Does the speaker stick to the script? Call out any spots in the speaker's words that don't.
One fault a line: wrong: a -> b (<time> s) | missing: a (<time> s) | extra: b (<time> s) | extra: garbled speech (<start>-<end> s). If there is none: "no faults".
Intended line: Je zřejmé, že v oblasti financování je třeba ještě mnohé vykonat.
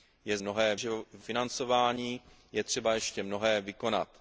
wrong: zřejmé -> mnohé (0.4 s)
missing: oblasti (1.2 s)